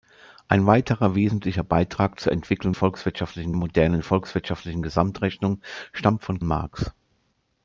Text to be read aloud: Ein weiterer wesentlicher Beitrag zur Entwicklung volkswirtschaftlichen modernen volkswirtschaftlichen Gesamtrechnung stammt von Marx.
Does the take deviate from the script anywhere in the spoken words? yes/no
no